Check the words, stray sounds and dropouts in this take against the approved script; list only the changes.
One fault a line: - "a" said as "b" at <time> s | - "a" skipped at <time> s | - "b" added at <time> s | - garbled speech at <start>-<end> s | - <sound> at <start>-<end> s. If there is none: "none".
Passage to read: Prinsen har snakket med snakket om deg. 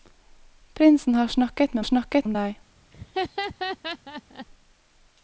- laugh at 2.9-4.5 s